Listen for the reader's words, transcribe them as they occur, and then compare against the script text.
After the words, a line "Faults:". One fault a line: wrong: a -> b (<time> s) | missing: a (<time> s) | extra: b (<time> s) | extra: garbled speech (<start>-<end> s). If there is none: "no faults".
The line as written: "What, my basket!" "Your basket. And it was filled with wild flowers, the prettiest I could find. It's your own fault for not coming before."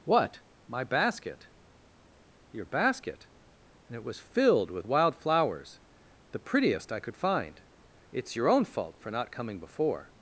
"What, my basket!" "Your basket. And it was filled with wild flowers, the prettiest I could find. It's your own fault for not coming before."
Faults:
no faults